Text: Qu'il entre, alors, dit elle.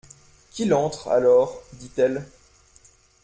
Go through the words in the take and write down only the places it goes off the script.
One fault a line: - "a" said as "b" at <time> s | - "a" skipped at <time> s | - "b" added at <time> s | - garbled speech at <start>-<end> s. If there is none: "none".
none